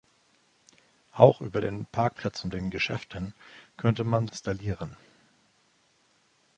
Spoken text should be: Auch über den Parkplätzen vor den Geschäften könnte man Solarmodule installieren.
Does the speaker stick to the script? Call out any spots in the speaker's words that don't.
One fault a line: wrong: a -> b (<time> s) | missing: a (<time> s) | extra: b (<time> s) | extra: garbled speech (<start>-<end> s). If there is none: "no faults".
missing: vor (2.5 s)
missing: Solarmodule (4.3 s)